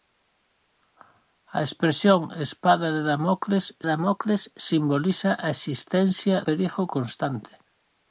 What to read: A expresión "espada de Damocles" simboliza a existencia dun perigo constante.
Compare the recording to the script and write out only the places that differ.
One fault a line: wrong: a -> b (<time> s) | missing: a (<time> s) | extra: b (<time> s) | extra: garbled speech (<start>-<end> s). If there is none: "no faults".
extra: Damocles (3.9 s)
missing: dun (6.4 s)